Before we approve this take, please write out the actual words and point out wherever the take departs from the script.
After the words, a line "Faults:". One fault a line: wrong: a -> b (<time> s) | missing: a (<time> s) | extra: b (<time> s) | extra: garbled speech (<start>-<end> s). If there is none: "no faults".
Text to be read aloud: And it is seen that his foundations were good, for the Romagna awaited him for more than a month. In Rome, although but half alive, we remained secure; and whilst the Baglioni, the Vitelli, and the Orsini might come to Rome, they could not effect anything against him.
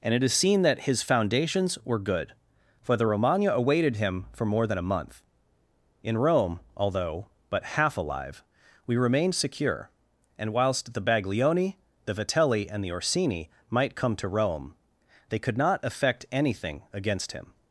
And it is seen that his foundations were good, for the Romagna awaited him for more than a month. In Rome, although but half alive, we remained secure; and whilst the Baglioni, the Vitelli, and the Orsini might come to Rome, they could not effect anything against him.
Faults:
no faults